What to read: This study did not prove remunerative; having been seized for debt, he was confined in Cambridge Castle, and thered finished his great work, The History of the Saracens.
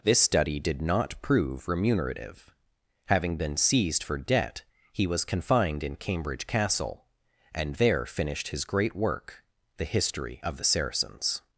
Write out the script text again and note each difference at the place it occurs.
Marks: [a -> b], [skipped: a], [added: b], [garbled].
This study did not prove remunerative; having been seized for debt, he was confined in Cambridge Castle, and [thered -> there] finished his great work, The History of the Saracens.